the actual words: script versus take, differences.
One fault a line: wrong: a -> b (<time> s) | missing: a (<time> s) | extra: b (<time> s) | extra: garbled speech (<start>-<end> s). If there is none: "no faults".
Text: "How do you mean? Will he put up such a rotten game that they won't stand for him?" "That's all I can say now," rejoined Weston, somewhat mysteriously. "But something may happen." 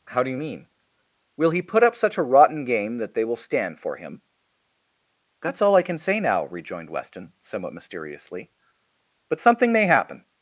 wrong: won't -> will (3.2 s)